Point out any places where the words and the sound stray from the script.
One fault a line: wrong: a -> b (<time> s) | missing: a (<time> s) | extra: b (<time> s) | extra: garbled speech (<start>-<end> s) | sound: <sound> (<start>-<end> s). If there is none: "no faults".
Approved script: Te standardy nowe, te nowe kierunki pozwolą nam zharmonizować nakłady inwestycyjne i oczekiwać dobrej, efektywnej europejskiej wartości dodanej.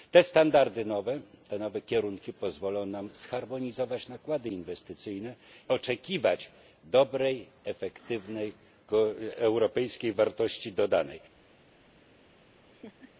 missing: i (5.3 s)
sound: laugh (12.4-13.1 s)